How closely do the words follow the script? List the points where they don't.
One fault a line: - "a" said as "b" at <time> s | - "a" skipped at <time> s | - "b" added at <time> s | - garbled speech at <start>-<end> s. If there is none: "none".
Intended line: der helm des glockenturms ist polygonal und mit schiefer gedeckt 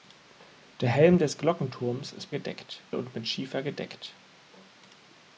- "polygonal" said as "gedeckt" at 2.3 s